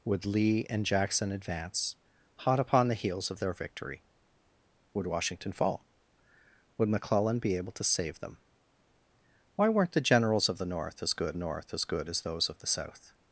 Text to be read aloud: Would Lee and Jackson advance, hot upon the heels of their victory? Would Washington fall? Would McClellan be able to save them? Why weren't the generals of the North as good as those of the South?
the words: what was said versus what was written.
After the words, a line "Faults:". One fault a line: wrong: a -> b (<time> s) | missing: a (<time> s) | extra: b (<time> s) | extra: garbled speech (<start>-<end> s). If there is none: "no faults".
Would Lee and Jackson advance, hot upon the heels of their victory? Would Washington fall? Would McClellan be able to save them? Why weren't the generals of the North as good North as good as those of the South?
Faults:
extra: North as good (11.4 s)